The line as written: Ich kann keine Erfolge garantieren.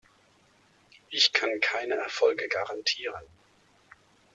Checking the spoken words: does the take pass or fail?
pass